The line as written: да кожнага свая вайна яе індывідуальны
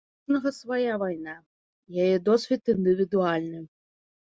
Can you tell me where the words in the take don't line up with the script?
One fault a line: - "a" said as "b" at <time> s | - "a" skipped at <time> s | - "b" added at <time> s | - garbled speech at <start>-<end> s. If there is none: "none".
- "да" said as "у" at 0.0 s
- "досвед" added at 2.3 s